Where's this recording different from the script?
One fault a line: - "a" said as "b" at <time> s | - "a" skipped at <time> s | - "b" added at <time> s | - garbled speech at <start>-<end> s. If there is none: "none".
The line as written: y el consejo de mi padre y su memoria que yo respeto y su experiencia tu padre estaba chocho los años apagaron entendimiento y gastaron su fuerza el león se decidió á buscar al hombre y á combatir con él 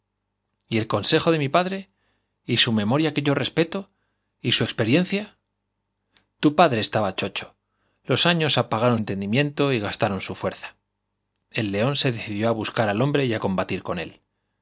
none